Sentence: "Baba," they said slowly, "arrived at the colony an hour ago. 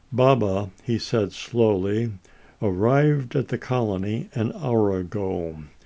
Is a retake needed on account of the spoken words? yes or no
yes